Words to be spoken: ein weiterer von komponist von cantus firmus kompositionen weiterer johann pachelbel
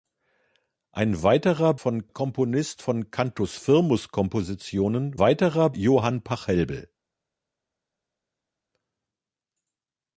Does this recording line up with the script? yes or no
yes